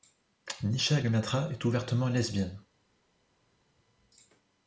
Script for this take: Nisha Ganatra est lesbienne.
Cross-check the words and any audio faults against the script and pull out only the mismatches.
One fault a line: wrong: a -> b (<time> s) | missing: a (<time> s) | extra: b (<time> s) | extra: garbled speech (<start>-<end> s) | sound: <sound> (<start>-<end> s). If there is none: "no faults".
extra: ouvertement (1.7 s)